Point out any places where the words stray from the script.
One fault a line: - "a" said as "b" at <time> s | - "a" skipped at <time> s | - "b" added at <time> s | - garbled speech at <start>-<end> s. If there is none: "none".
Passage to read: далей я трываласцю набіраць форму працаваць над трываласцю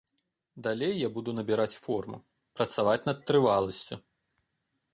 - "трываласцю" said as "буду" at 1.2 s